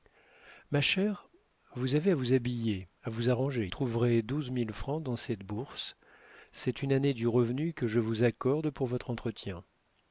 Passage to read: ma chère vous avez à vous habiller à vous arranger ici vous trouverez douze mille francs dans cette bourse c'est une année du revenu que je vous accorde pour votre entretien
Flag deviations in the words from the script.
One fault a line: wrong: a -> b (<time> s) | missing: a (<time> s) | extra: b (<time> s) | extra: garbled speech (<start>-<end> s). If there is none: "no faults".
missing: ici vous (3.7 s)